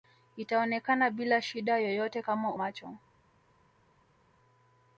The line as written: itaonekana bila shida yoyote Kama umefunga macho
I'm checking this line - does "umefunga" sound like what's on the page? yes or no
no